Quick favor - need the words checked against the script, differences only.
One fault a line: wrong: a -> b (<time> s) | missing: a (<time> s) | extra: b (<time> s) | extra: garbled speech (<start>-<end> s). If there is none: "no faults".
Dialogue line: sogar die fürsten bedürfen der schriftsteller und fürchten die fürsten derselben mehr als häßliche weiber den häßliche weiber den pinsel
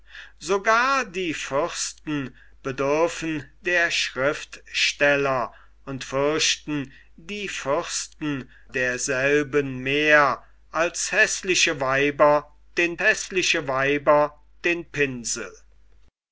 no faults